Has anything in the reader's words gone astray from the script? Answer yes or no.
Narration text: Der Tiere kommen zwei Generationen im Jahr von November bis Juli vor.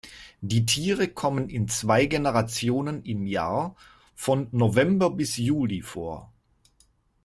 yes